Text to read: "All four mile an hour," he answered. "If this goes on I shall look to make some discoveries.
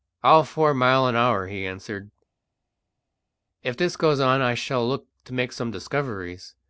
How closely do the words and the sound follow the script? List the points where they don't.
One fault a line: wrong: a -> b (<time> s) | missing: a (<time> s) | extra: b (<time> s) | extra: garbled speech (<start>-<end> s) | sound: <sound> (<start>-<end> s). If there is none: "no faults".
no faults